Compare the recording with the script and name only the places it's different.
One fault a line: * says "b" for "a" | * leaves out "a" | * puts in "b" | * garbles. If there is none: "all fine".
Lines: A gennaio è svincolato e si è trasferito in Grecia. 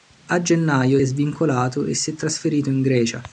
all fine